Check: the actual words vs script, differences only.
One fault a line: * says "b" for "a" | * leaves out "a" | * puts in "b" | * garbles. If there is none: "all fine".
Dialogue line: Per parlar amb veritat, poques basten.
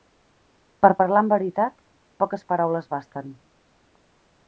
* puts in "paraules"